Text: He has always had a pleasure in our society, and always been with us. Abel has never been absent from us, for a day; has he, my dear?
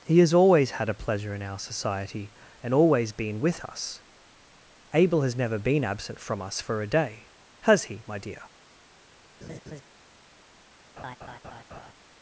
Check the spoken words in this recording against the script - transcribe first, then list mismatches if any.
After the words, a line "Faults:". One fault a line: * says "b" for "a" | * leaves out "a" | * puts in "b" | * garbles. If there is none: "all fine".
He has always had a pleasure in our society, and always been with us. Abel has never been absent from us, for a day; has he, my dear?
Faults:
all fine